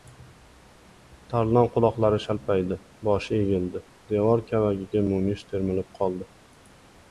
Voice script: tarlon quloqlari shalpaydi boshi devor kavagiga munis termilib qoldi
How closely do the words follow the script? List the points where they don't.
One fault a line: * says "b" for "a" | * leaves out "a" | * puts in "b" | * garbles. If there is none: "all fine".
* puts in "egildi"